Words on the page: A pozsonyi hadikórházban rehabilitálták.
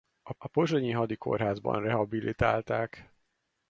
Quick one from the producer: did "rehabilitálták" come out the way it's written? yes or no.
yes